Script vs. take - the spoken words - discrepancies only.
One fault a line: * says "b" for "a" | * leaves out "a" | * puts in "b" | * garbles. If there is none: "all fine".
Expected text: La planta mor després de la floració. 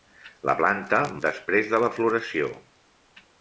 * leaves out "mor"